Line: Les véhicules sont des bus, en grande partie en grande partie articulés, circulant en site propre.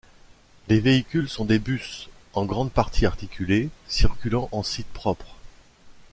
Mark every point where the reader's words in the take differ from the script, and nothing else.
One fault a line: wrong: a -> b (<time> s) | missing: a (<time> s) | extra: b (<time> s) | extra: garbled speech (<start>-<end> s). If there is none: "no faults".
missing: en grande partie (3.0 s)